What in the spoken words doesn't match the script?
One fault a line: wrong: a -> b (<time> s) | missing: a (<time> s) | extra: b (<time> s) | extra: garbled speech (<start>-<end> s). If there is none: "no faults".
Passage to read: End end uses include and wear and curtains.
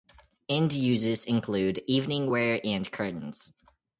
missing: end (0.7 s)
wrong: and -> evening (1.9 s)